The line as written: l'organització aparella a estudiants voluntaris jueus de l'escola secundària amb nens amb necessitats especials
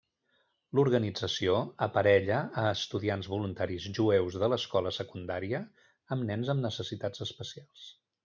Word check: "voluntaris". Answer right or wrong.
right